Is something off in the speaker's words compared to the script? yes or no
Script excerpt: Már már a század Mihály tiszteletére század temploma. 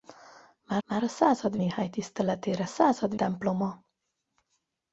no